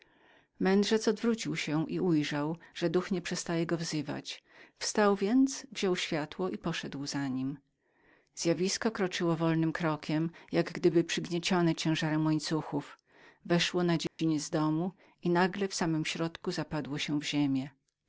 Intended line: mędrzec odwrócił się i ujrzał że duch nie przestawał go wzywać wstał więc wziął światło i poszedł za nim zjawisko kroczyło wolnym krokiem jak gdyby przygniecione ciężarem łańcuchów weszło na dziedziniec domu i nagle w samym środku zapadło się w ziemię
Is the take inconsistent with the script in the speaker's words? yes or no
no